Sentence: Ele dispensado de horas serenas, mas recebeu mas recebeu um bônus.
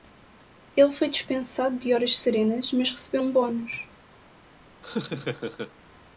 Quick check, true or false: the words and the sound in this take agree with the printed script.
false